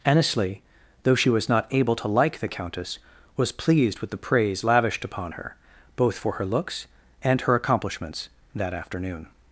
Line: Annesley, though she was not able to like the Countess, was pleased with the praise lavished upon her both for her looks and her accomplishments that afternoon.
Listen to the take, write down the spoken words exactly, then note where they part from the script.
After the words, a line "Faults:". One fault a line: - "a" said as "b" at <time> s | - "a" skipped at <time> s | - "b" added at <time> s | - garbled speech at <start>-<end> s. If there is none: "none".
Annesley, though she was not able to like the Countess, was pleased with the praise lavished upon her both for her looks and her accomplishments that afternoon.
Faults:
none